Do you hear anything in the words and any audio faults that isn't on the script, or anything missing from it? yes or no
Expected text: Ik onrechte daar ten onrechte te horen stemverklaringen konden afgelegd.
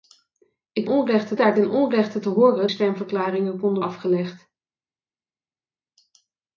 no